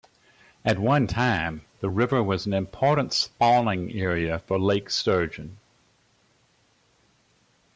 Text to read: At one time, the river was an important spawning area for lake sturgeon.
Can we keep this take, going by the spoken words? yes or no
yes